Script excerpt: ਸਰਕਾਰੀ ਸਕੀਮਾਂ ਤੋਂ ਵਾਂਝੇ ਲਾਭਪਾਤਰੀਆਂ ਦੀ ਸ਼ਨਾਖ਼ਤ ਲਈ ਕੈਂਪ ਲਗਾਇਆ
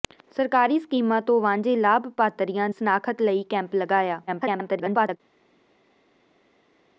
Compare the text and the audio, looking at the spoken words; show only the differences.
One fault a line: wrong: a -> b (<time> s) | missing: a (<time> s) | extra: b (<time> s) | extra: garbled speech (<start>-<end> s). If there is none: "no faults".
missing: ਦੀ (2.7 s)
extra: garbled speech (4.3-5.2 s)